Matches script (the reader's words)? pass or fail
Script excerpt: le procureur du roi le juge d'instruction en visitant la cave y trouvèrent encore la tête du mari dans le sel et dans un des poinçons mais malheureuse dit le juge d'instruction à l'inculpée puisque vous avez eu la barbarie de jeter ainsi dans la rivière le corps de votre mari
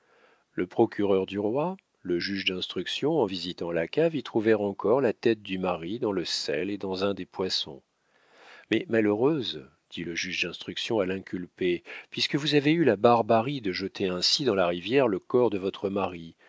pass